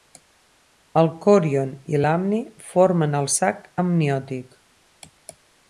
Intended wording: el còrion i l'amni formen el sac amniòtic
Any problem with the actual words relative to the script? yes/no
no